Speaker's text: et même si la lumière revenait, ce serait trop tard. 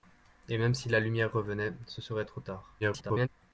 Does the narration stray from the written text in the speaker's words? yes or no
yes